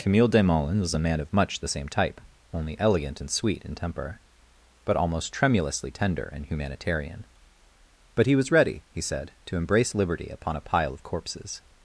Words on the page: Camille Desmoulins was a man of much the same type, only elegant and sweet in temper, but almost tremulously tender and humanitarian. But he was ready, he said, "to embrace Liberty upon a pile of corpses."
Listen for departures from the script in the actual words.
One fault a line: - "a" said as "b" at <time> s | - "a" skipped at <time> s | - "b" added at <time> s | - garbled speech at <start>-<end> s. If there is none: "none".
none